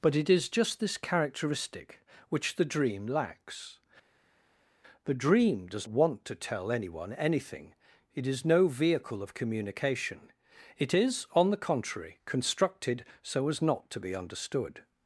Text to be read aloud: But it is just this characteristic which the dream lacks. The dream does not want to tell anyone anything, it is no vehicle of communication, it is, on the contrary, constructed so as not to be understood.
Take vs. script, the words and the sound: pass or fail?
fail